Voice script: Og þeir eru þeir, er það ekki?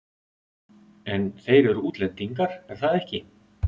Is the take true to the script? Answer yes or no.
no